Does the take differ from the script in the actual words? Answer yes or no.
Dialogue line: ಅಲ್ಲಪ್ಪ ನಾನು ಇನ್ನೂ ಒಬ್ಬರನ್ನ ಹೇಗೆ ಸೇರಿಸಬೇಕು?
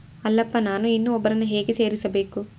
no